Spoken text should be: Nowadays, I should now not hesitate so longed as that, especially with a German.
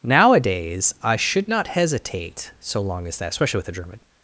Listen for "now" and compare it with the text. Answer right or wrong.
wrong